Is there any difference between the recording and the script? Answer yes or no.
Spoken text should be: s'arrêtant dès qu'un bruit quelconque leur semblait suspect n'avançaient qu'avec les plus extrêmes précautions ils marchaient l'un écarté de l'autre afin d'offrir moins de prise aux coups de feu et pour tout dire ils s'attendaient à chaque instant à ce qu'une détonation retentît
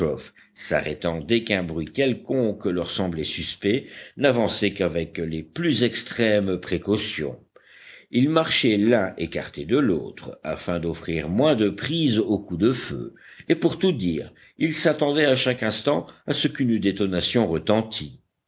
no